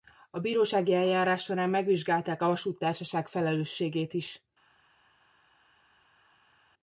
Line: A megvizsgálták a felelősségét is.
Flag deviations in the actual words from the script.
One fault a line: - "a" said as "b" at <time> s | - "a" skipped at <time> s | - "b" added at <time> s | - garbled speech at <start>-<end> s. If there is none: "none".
- "bírósági eljárás során" added at 0.4 s
- "vasúttársaság" added at 2.5 s